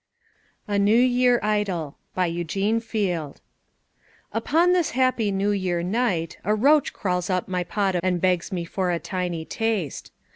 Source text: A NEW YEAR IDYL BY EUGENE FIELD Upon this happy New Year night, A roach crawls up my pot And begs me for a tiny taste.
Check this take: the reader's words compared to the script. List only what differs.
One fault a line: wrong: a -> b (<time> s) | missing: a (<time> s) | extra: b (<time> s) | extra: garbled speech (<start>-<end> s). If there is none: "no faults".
no faults